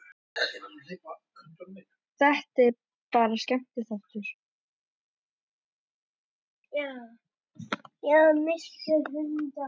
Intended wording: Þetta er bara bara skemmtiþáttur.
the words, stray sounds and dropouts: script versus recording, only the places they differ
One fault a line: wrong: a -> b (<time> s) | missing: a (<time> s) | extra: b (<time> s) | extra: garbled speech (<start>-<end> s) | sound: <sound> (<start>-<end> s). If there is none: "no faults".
missing: bara (3.4 s)